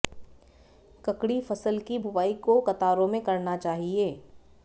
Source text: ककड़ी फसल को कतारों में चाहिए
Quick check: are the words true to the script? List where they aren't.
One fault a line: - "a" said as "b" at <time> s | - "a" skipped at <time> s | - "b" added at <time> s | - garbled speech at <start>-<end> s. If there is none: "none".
- "की बुवाई" added at 1.9 s
- "करना" added at 3.2 s